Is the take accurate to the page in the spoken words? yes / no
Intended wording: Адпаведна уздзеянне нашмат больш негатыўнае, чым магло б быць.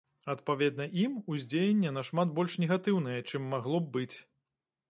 no